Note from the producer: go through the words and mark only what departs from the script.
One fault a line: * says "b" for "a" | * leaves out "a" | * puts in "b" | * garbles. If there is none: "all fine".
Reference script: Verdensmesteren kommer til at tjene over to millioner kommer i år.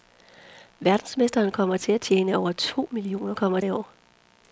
all fine